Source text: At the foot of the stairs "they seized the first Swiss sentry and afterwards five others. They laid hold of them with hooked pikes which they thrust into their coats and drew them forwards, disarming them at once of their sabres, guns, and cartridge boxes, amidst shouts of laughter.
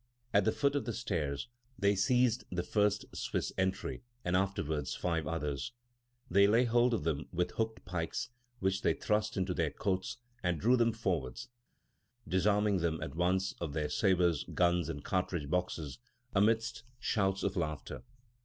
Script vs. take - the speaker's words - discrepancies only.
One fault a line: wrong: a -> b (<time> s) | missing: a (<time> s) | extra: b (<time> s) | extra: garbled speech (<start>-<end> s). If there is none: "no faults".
no faults